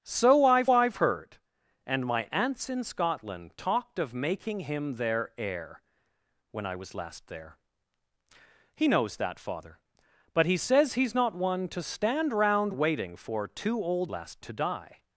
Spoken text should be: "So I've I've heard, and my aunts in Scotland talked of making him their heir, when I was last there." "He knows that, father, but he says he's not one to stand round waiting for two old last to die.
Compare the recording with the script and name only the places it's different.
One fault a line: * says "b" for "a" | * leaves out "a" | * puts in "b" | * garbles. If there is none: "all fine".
all fine